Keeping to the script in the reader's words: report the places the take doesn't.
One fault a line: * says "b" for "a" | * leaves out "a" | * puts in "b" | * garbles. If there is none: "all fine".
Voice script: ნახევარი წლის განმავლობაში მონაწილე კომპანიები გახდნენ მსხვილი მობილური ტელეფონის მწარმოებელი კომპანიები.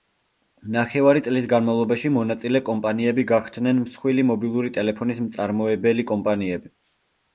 all fine